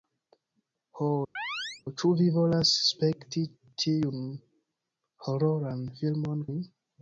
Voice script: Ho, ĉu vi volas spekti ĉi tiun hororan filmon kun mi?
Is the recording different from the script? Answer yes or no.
yes